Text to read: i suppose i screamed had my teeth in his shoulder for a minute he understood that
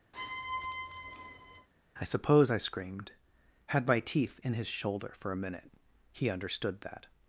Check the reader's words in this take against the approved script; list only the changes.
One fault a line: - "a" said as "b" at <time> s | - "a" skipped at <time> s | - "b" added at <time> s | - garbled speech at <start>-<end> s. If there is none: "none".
none